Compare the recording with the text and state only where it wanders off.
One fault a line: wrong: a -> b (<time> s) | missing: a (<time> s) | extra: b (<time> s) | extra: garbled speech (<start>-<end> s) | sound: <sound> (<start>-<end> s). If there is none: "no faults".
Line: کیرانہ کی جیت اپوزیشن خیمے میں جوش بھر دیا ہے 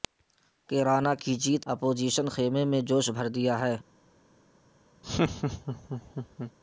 sound: laugh (5.0-6.5 s)